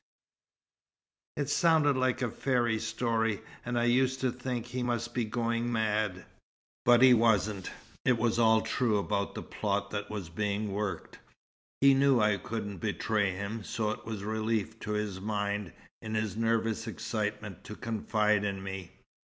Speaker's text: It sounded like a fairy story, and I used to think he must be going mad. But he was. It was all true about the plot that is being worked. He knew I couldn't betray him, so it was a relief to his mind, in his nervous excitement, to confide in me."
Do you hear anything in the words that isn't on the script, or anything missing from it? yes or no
yes